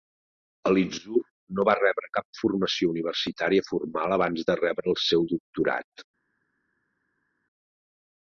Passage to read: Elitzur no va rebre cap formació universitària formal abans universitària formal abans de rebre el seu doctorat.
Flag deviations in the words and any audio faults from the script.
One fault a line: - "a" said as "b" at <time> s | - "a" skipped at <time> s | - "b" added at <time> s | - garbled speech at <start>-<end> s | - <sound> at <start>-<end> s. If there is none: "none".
- "universitària formal abans" skipped at 4.5 s